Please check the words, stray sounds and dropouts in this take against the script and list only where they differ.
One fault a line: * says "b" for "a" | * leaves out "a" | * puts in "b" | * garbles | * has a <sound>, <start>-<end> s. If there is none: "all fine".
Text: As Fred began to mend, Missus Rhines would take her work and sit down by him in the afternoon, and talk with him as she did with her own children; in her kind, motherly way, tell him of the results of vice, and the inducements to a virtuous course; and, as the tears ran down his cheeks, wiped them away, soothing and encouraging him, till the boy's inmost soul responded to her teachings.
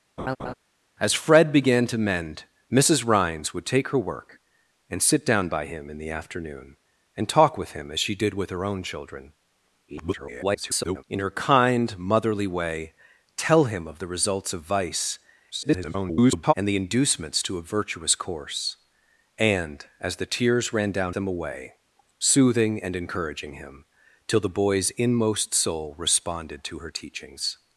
* has a laugh, 0.2-0.5 s
* garbles
* garbles
* leaves out "his cheeks wiped"